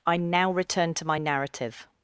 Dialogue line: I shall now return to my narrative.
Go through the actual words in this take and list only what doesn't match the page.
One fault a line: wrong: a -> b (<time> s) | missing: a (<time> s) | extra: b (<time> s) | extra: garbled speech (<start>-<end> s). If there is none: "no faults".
missing: shall (0.2 s)